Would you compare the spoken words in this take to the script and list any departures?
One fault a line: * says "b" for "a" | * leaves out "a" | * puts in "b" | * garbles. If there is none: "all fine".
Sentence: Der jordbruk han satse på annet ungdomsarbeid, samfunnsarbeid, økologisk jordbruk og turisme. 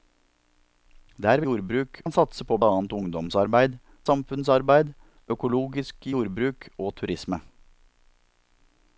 all fine